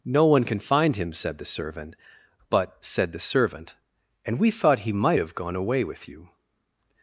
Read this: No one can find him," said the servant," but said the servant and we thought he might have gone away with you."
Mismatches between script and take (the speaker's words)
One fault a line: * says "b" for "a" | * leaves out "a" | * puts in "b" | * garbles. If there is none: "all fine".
all fine